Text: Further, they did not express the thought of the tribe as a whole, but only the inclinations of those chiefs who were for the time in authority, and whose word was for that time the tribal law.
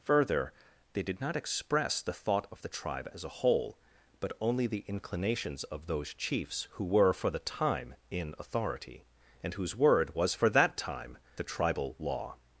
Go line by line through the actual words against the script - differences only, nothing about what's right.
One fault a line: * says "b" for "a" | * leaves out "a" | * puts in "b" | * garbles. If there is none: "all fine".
all fine